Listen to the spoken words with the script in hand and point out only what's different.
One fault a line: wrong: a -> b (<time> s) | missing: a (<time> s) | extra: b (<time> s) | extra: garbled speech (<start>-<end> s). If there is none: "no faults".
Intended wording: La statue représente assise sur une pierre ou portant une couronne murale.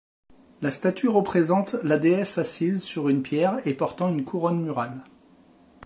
extra: la déesse (1.8 s)
wrong: ou -> et (3.6 s)